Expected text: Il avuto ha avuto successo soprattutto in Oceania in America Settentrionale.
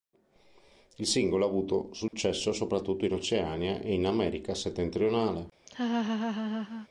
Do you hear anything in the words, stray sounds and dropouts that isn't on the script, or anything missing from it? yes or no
yes